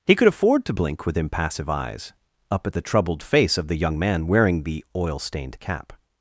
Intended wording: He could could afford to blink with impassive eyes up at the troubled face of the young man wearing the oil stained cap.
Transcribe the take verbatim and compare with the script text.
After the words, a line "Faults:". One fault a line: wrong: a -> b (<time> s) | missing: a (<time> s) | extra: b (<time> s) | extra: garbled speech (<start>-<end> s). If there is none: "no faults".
He could afford to blink with impassive eyes up at the troubled face of the young man wearing the oil stained cap.
Faults:
missing: could (0.3 s)